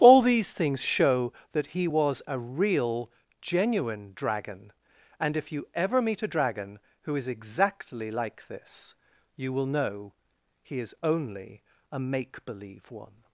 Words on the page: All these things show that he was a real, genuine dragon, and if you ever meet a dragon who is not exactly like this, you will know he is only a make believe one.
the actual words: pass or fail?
fail